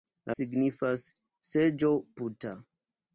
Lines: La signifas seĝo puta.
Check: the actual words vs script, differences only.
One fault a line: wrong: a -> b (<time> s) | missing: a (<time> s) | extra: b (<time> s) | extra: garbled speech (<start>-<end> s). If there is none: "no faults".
no faults